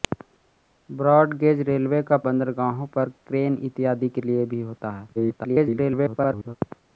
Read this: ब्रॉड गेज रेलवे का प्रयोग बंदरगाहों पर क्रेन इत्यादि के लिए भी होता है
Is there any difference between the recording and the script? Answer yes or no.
yes